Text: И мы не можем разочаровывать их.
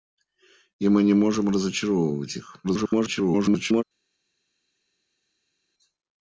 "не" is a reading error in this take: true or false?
false